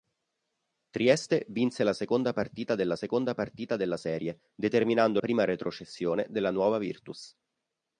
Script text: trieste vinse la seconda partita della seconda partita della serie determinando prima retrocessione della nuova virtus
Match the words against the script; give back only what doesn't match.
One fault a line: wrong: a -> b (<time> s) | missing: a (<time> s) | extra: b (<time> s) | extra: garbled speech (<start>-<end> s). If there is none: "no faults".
no faults